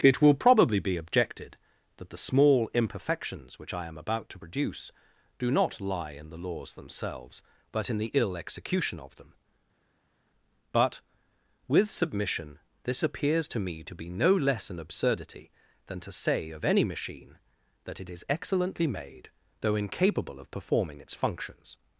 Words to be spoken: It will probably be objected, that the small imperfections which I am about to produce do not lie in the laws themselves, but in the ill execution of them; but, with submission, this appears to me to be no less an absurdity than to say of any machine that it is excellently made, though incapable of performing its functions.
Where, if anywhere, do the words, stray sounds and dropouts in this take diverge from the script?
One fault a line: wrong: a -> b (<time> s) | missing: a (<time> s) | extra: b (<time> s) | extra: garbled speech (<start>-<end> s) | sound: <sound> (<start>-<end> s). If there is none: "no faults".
no faults